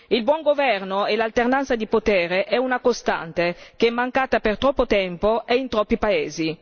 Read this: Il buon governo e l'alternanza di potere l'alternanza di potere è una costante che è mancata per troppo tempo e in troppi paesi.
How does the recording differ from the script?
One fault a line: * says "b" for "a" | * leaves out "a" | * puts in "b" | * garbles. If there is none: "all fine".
* leaves out "l'alternanza di potere"